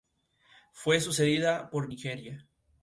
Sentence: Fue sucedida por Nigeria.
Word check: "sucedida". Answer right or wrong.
right